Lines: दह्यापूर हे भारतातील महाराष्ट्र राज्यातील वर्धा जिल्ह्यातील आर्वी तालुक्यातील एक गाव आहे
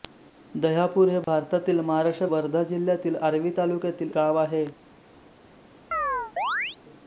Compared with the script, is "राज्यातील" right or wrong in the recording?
wrong